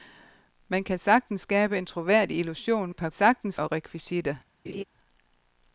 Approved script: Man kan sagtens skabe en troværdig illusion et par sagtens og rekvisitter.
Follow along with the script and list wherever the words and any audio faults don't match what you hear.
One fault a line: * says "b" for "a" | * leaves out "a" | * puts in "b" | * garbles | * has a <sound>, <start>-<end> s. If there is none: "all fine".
* has a laugh, 4.6-4.8 s